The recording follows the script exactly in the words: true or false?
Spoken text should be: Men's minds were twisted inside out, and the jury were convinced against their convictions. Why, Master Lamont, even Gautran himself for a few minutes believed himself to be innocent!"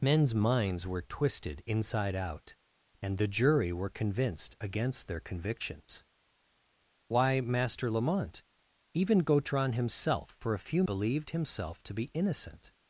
false